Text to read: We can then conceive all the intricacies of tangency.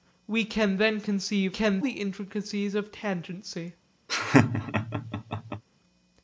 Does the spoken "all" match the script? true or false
false